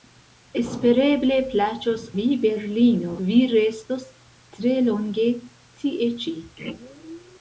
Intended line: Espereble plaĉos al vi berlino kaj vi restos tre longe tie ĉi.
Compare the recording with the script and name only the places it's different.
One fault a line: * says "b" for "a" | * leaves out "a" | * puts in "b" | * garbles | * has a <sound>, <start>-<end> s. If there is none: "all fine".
* leaves out "al"
* leaves out "kaj"